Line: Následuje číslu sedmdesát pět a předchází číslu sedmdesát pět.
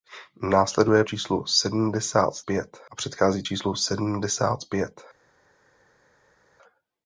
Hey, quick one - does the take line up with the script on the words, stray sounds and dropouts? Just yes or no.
yes